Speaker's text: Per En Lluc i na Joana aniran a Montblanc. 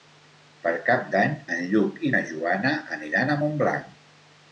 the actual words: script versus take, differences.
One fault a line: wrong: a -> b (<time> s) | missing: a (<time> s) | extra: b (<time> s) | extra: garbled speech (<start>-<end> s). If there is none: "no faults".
extra: Cap d'Any (0.8 s)